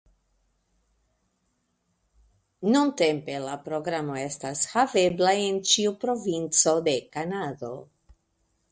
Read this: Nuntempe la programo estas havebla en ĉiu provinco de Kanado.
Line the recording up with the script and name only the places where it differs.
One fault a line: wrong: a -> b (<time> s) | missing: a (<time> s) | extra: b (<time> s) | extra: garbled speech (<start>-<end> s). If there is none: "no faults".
no faults